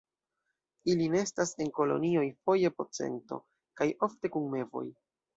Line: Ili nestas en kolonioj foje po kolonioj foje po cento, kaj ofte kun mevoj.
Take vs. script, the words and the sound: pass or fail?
fail